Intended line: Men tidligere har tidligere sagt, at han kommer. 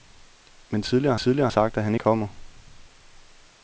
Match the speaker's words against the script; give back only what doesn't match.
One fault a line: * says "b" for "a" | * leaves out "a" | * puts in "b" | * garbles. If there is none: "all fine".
all fine